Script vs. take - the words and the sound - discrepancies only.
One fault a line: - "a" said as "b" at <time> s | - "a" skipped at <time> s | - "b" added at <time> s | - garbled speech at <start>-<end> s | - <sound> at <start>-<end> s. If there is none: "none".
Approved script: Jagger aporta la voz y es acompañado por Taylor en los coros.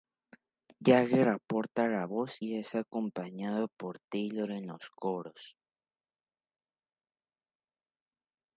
none